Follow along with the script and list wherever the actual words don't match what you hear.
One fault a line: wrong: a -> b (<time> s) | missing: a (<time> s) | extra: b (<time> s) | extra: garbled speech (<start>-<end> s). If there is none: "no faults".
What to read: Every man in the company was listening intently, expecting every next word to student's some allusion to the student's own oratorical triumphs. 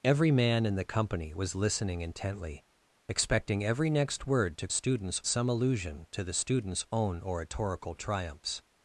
no faults